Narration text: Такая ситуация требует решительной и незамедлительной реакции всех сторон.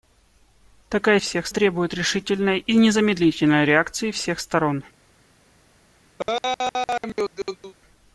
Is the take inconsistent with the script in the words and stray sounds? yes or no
yes